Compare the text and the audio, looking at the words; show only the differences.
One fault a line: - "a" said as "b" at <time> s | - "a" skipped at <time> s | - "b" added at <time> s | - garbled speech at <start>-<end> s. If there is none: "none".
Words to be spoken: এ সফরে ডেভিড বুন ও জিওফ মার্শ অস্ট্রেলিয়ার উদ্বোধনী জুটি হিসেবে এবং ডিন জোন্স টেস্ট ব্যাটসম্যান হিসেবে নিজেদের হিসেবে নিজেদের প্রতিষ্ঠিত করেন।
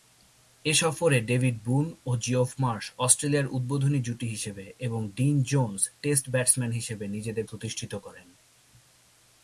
- "হিসেবে নিজেদের" skipped at 7.5 s